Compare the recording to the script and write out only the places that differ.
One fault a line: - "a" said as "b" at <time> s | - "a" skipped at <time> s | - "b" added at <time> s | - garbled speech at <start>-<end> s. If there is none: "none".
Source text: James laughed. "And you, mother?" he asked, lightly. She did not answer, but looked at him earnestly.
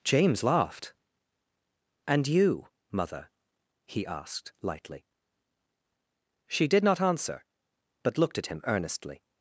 none